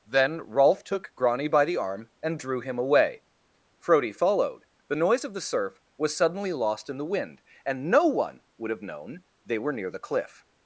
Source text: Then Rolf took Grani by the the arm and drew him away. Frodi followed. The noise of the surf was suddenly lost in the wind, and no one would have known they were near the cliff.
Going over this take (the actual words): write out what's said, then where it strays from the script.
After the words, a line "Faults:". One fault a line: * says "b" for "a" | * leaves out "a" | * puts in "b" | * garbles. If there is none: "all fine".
Then Rolf took Grani by the arm and drew him away. Frodi followed. The noise of the surf was suddenly lost in the wind, and no one would have known they were near the cliff.
Faults:
* leaves out "the"